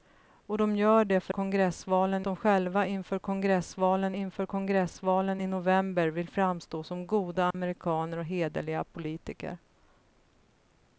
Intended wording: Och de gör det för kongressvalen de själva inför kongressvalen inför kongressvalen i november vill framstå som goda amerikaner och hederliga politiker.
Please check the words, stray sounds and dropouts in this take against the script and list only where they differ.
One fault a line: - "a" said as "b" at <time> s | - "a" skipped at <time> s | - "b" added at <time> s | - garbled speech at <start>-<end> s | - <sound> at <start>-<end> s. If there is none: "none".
- dropout at 7.5-7.5 s